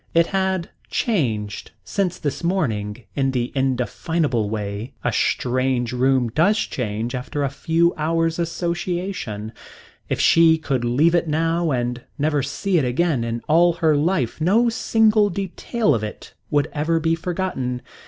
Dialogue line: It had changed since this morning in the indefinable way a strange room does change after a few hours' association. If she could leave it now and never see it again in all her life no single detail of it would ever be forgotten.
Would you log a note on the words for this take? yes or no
no